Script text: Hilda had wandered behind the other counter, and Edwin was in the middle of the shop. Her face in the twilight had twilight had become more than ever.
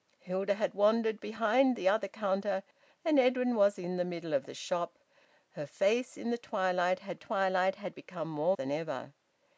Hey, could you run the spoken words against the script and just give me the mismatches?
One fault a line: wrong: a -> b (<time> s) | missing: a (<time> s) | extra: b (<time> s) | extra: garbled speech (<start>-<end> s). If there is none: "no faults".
no faults